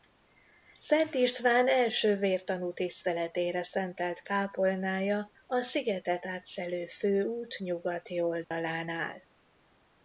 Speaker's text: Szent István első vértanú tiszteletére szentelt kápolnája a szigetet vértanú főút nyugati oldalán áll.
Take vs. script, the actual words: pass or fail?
fail